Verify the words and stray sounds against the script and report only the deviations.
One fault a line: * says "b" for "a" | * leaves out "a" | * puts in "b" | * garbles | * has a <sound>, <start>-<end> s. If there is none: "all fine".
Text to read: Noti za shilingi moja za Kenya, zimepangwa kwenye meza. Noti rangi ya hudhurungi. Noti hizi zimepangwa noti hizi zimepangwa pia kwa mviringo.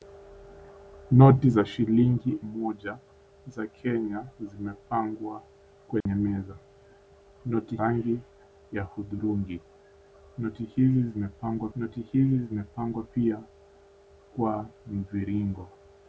* has a dropout, 6.0-6.1 s